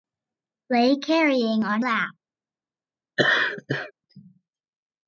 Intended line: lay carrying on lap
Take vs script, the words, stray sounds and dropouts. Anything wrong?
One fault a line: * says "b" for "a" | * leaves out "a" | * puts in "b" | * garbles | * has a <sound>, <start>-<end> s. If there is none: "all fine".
* has a laugh, 3.2-3.9 s